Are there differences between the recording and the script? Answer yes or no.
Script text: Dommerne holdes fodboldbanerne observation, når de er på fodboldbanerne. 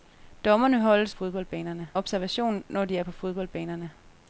no